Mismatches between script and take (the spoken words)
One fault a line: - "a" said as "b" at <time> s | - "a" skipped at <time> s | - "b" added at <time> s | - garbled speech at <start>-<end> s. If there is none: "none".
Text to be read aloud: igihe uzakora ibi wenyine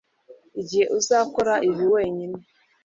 none